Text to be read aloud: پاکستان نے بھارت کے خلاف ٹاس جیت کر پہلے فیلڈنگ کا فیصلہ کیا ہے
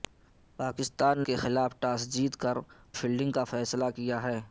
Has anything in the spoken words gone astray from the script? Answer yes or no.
yes